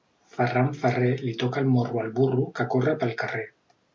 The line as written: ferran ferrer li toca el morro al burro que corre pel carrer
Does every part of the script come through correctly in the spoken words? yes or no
yes